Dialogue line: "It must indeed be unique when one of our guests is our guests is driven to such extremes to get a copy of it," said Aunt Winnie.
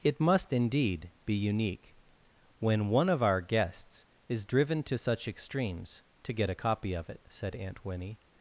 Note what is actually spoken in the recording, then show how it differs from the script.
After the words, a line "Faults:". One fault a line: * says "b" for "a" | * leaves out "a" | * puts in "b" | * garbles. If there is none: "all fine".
"It must indeed be unique when one of our guests is driven to such extremes to get a copy of it," said Aunt Winnie.
Faults:
* leaves out "our guests is"